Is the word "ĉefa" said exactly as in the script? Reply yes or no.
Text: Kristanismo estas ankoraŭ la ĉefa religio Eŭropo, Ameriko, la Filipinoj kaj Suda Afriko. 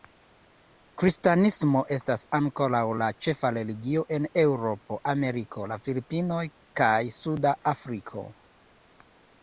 yes